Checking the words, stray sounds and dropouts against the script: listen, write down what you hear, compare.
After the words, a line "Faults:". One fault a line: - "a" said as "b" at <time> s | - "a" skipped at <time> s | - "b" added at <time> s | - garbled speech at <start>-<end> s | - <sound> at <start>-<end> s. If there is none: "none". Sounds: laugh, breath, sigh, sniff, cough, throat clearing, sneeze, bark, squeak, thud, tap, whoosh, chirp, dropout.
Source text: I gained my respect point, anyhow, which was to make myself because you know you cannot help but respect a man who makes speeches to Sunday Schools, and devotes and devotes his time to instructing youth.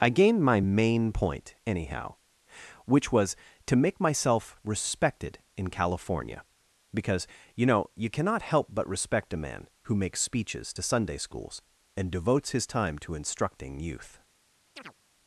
I gained my main point, anyhow, which was to make myself respected in California, because you know you cannot help but respect a man who makes speeches to Sunday Schools, and devotes his time to instructing youth.
Faults:
- "respect" said as "main" at 0.6 s
- "respected in California" added at 4.6 s
- "and devotes" skipped at 12.5 s
- chirp at 14.8-14.9 s